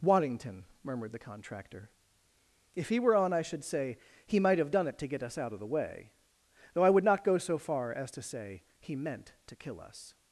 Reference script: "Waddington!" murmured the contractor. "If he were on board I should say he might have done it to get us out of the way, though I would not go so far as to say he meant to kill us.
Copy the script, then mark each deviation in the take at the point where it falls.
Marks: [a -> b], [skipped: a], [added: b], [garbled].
"Waddington!" murmured the contractor. "If he were on [skipped: board] I should say he might have done it to get us out of the way, though I would not go so far as to say he meant to kill us.